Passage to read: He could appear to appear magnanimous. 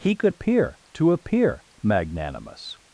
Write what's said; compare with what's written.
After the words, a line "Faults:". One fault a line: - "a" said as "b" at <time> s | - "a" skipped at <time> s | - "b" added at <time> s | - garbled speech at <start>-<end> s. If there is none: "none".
He could appear to appear magnanimous.
Faults:
none